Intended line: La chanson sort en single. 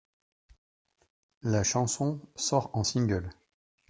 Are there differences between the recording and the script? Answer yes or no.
no